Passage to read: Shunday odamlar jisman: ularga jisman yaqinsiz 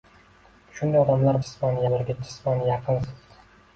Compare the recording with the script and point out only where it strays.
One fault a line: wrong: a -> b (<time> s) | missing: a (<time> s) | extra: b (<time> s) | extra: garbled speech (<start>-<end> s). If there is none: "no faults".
no faults